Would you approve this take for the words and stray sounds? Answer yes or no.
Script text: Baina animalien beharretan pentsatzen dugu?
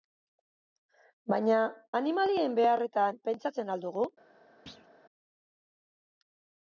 no